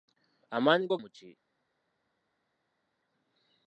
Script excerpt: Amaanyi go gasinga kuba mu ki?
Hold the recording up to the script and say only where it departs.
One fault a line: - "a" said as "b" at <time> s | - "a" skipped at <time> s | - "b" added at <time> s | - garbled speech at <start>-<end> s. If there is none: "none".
- "gasinga kuba" skipped at 1.0 s